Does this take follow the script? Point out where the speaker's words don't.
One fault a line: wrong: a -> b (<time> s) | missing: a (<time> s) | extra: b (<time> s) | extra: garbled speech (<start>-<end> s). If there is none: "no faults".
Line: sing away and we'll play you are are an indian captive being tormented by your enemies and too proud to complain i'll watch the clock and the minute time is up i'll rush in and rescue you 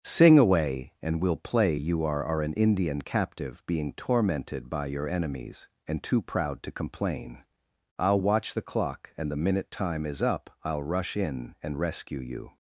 no faults